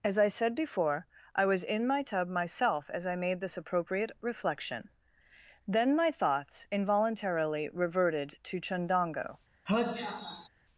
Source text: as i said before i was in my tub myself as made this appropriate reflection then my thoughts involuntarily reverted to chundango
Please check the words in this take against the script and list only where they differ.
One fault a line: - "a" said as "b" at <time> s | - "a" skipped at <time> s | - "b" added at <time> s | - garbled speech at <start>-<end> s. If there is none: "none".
- "i" added at 3.0 s